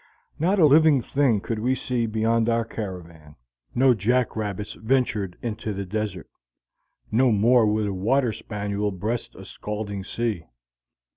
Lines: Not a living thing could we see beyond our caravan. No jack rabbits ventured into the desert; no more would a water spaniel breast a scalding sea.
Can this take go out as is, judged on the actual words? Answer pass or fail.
pass